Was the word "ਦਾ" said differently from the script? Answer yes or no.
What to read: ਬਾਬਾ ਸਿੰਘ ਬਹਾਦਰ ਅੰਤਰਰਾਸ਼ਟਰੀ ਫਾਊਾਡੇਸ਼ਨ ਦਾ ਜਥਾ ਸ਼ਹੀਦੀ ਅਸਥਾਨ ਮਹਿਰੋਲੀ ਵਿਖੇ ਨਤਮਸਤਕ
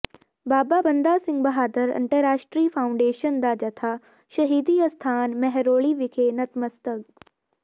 no